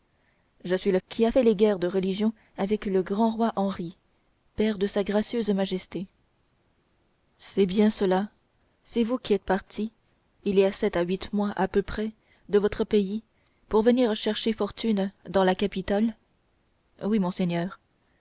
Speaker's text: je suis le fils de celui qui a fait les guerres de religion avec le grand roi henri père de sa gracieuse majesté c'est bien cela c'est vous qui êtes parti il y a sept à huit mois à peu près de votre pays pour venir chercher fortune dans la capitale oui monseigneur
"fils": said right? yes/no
no